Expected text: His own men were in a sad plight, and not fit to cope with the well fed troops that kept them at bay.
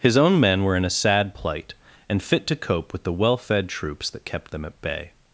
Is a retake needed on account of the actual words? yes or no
yes